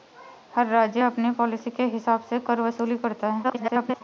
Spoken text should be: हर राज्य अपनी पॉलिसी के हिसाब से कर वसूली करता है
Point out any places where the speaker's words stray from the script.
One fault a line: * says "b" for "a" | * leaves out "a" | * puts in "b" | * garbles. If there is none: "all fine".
* garbles